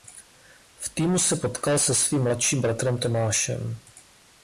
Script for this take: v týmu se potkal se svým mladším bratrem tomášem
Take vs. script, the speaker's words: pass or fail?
pass